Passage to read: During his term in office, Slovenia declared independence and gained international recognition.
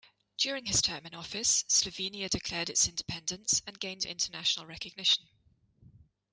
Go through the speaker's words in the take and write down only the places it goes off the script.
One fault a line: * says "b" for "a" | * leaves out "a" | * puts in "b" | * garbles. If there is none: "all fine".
* puts in "its"